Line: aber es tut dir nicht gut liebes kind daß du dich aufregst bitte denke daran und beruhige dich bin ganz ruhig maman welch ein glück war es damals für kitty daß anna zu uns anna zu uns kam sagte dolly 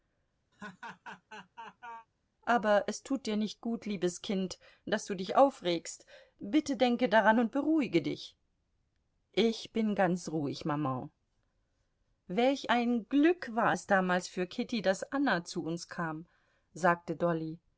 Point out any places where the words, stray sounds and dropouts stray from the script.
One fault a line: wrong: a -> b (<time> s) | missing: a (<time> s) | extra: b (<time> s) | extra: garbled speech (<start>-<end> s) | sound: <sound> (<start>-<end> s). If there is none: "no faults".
sound: laugh (0.5-2.1 s)
extra: ich (9.3 s)
missing: anna zu uns (15.9 s)